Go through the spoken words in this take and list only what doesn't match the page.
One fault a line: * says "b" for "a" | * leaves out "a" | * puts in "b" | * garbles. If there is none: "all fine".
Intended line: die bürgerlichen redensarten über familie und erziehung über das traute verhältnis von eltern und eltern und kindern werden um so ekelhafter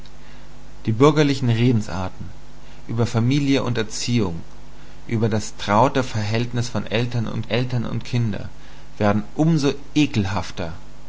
all fine